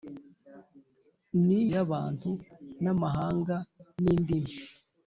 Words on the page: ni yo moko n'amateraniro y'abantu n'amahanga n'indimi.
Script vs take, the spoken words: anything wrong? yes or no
yes